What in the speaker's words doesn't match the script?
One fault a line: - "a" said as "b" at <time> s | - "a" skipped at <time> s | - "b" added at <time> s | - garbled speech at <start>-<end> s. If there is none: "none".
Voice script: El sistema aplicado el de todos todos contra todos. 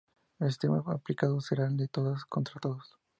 - "será" added at 1.4 s
- "todos" skipped at 2.2 s